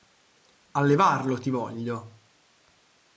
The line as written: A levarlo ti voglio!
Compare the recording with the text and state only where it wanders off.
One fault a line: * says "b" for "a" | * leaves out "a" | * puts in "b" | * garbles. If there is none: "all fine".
all fine